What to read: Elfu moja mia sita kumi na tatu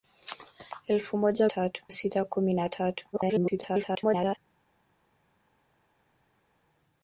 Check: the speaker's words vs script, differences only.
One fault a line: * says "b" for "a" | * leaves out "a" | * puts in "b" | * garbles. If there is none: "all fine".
* says "tatu" for "mia"
* garbles